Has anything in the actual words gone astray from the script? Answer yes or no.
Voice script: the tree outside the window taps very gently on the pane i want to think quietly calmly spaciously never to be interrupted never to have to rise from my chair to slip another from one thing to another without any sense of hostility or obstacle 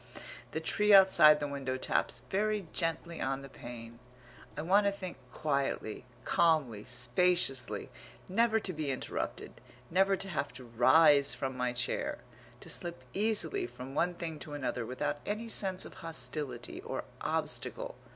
yes